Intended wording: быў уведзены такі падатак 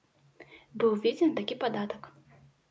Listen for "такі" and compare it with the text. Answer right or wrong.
right